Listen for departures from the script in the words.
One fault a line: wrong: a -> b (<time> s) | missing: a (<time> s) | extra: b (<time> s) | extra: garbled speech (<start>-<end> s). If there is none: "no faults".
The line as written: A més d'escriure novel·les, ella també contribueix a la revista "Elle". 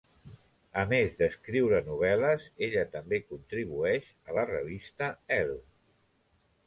no faults